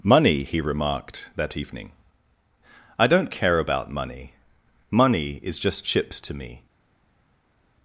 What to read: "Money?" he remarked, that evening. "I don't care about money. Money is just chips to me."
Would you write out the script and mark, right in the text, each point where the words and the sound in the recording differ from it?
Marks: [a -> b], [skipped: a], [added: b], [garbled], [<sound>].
"Money?" he remarked, that evening. "I don't care about money. Money is just chips to me."